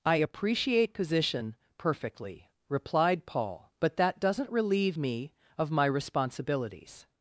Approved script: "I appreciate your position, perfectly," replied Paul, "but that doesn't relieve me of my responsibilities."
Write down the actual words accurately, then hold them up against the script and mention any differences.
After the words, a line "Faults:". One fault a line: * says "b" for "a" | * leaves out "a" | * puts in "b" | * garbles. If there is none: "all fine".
"I appreciate position, perfectly," replied Paul, "but that doesn't relieve me of my responsibilities."
Faults:
* leaves out "your"